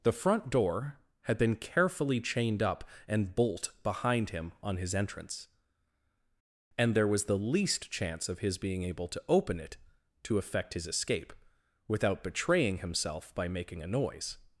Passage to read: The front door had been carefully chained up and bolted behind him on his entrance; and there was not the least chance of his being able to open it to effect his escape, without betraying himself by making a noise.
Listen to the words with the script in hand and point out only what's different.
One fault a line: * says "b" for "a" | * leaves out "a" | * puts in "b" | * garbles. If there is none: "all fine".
* says "bolt" for "bolted"
* leaves out "not"